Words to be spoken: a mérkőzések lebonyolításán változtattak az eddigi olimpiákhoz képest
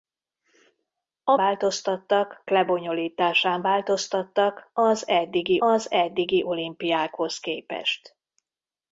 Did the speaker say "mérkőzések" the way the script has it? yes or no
no